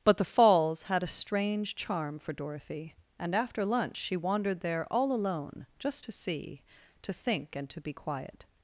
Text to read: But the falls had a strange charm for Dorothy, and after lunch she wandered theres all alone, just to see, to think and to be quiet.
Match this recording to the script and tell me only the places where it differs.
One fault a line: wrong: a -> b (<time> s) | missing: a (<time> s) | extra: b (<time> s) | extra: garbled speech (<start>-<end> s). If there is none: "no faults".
wrong: theres -> there (4.6 s)